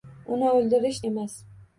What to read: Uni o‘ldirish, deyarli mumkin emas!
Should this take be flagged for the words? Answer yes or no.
yes